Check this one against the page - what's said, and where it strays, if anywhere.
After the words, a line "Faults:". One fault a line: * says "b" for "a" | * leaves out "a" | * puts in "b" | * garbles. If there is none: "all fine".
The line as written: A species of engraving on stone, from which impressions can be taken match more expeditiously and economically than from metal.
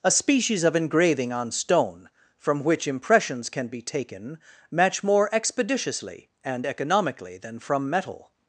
A species of engraving on stone, from which impressions can be taken match more expeditiously and economically than from metal.
Faults:
all fine